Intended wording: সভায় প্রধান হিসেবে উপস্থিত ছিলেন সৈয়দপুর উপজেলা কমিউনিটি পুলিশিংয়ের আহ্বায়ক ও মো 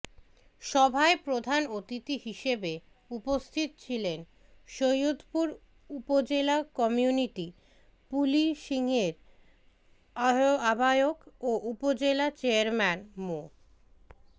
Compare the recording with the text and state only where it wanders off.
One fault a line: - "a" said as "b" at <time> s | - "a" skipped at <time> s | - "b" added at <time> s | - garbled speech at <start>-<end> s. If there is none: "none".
- "অতিথি" added at 1.8 s
- "উপজেলা চেয়ারম্যান" added at 11.7 s